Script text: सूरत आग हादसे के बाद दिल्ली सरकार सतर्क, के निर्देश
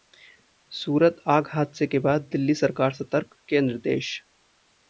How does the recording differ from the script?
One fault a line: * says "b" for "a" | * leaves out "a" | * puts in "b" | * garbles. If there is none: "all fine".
all fine